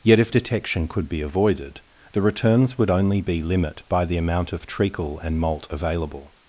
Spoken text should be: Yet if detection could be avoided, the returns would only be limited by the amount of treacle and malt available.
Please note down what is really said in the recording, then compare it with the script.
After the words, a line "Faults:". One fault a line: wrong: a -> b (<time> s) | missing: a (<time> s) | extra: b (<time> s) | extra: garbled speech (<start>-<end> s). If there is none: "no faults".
Yet if detection could be avoided, the returns would only be limit by the amount of treacle and malt available.
Faults:
wrong: limited -> limit (3.4 s)